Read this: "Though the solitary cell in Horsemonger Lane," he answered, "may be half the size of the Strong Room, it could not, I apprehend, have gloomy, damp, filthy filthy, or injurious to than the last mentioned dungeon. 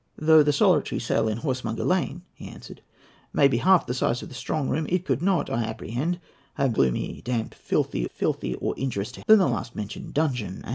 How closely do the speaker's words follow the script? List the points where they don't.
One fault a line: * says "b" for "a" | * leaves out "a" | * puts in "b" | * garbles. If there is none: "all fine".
all fine